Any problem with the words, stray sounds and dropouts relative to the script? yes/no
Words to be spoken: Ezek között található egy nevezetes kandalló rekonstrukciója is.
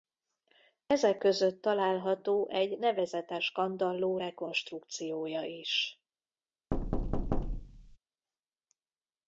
yes